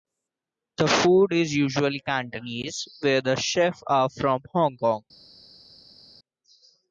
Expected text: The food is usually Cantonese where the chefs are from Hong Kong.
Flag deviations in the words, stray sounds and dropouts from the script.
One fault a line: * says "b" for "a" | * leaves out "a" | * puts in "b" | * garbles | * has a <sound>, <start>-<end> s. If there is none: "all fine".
all fine